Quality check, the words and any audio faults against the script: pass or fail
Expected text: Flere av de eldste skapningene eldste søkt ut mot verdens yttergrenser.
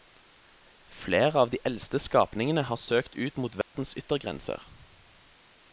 fail